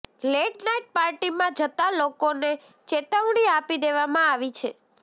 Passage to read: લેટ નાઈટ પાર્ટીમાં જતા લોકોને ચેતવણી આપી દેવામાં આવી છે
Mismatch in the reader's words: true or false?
false